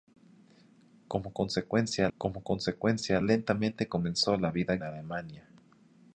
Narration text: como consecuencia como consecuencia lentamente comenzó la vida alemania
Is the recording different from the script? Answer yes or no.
no